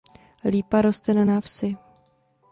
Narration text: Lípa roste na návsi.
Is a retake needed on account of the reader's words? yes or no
no